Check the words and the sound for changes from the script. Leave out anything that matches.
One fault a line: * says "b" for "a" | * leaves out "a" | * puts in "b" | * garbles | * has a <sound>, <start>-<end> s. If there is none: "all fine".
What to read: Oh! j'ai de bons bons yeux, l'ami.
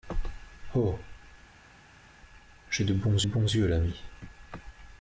all fine